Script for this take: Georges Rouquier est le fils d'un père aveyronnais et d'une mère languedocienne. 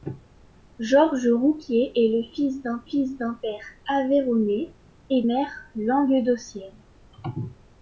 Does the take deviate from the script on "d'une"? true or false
true